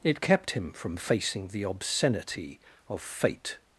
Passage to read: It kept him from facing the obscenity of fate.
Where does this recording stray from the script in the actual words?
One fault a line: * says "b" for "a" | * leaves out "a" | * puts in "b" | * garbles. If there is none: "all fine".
all fine